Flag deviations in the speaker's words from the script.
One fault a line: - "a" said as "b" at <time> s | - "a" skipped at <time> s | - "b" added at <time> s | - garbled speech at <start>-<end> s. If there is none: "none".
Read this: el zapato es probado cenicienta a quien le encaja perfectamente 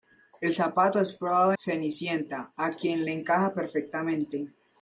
none